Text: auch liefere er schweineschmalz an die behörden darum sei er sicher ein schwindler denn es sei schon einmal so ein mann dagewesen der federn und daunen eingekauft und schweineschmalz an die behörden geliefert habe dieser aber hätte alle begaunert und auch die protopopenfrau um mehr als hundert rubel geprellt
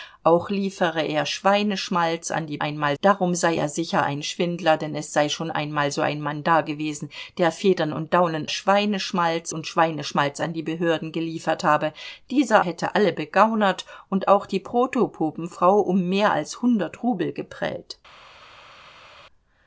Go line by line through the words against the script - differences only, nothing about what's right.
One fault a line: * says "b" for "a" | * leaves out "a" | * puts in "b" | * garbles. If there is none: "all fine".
* says "einmal" for "behörden"
* says "schweineschmalz" for "eingekauft"
* leaves out "aber"